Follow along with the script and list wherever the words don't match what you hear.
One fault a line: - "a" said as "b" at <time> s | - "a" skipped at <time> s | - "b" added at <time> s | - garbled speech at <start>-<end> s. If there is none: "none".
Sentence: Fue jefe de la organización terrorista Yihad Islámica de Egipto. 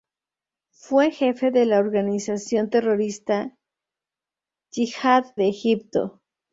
- "Islámica" skipped at 5.2 s